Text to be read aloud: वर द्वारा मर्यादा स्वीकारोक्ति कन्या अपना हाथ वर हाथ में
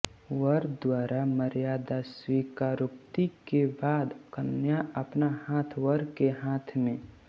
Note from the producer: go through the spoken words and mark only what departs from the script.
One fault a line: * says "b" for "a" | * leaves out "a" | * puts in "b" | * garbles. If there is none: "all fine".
* puts in "के बाद"
* puts in "के"